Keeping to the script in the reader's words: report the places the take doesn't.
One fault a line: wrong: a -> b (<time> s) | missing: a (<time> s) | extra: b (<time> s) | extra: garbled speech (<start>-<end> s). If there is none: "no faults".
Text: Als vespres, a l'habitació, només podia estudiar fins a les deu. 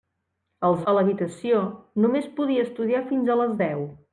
missing: vespres (0.8 s)